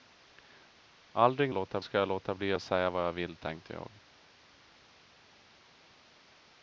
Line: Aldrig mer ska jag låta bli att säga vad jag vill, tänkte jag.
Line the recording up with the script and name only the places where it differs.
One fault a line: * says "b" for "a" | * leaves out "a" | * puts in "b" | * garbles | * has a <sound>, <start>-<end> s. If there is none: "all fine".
* says "låta" for "mer"